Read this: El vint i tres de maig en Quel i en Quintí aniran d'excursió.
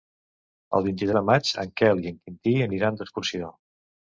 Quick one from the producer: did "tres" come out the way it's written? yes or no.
no